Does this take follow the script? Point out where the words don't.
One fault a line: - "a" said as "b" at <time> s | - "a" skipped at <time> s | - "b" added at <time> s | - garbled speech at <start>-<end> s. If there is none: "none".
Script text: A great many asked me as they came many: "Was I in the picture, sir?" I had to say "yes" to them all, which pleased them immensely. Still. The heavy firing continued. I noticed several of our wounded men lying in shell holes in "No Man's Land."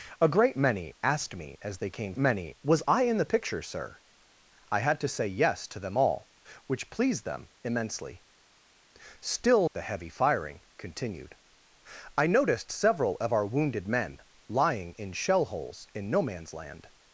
none